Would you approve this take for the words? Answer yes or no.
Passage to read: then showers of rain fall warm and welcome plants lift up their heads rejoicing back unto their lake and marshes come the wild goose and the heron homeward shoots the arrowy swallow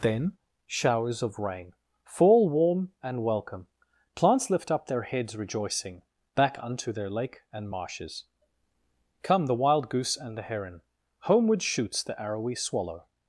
yes